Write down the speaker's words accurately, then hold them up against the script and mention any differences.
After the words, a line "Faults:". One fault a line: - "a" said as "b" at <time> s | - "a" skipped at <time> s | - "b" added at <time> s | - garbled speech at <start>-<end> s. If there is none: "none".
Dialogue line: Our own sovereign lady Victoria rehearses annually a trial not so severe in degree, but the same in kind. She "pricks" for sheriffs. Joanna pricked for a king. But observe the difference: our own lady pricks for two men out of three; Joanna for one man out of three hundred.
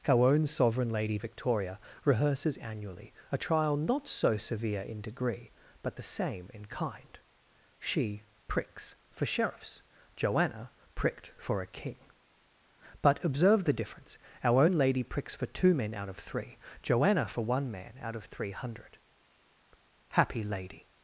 Our own sovereign lady Victoria rehearses annually a trial not so severe in degree, but the same in kind. She "pricks" for sheriffs. Joanna pricked for a king. But observe the difference: our own lady pricks for two men out of three; Joanna for one man out of three hundred. Happy Lady
Faults:
- "Happy Lady" added at 20.1 s